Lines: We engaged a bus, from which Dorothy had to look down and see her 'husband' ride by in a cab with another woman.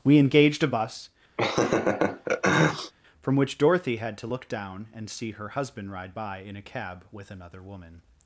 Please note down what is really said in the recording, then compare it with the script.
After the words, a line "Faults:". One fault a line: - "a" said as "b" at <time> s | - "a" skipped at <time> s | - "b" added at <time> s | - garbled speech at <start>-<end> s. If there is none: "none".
We engaged a bus, from which Dorothy had to look down and see her 'husband' ride by in a cab with another woman.
Faults:
none